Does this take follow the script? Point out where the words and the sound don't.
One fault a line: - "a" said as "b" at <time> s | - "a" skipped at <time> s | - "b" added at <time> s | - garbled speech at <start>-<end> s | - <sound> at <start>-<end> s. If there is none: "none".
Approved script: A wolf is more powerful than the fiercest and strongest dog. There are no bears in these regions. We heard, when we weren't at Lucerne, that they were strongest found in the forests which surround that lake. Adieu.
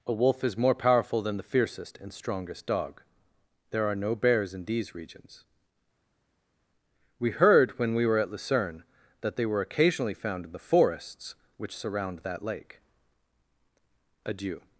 - "weren't" said as "were" at 8.1 s
- "strongest" said as "occasionally" at 9.6 s